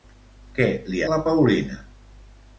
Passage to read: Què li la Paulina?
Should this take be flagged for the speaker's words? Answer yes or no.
no